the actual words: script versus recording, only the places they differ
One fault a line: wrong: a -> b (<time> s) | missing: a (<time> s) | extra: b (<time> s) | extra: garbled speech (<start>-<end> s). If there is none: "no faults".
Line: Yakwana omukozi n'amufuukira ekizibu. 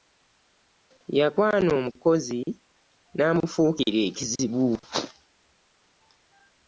no faults